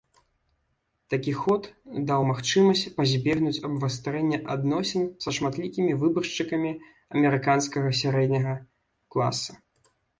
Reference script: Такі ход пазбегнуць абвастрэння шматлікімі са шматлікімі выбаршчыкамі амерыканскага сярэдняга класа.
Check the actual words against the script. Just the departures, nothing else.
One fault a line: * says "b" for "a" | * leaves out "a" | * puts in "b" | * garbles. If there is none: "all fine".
* puts in "даў магчымасць"
* says "адносін" for "шматлікімі"